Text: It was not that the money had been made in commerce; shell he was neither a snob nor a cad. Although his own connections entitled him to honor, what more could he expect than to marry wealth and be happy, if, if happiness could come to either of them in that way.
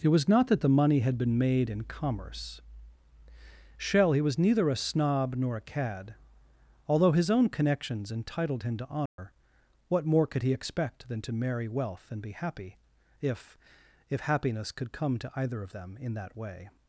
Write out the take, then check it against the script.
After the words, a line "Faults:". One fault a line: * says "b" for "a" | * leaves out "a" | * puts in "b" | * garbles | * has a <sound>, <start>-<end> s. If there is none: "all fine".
It was not that the money had been made in commerce; shell he was neither a snob nor a cad. Although his own connections entitled him to honor, what more could he expect than to marry wealth and be happy, if, if happiness could come to either of them in that way.
Faults:
* has a dropout, 9.1-9.2 s